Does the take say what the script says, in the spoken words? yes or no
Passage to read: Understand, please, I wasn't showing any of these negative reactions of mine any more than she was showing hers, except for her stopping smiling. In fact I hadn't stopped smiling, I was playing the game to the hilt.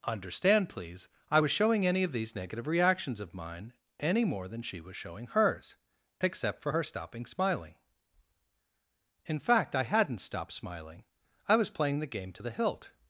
no